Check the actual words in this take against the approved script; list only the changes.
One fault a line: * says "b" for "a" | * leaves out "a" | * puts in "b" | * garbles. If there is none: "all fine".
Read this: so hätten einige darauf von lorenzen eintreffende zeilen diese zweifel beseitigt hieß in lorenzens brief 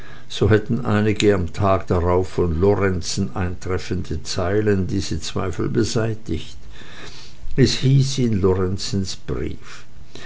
* puts in "am tage"
* puts in "es"